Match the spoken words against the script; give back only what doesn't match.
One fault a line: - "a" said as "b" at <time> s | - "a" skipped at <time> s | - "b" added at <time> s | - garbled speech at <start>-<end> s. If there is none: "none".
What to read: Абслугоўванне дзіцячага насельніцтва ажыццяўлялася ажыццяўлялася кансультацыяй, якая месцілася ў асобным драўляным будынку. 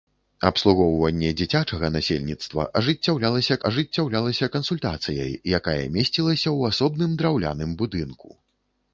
none